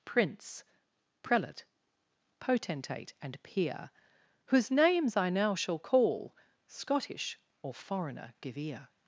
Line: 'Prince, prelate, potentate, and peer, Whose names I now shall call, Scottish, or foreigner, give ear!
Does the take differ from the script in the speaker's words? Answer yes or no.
no